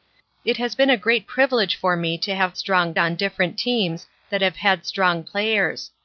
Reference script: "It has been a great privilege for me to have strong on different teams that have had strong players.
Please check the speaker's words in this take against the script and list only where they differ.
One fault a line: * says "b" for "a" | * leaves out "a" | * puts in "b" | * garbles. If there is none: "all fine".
all fine